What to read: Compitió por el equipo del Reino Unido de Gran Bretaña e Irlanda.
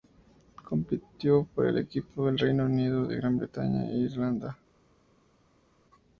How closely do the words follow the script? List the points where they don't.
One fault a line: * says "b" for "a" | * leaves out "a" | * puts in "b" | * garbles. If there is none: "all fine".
all fine